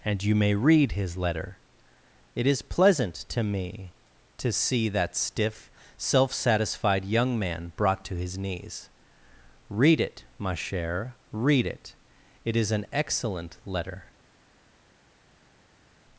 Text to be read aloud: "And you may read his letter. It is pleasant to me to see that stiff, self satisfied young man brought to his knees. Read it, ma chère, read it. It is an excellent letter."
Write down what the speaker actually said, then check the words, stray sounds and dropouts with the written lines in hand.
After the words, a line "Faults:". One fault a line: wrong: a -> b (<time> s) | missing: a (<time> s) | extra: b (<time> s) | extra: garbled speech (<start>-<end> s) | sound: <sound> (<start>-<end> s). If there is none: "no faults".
"And you may read his letter. It is pleasant to me to see that stiff, self satisfied young man brought to his knees. Read it, ma chère, read it. It is an excellent letter."
Faults:
no faults